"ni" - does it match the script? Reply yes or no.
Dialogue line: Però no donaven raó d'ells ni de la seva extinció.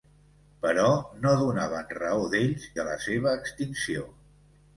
no